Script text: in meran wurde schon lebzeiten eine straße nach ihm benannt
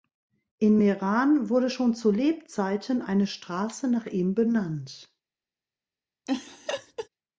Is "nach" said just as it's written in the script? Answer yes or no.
yes